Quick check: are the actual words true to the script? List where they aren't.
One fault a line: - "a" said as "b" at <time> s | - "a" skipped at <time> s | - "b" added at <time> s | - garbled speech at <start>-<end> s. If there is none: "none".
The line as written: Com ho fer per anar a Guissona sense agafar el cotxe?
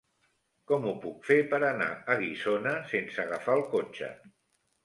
- "puc" added at 1.0 s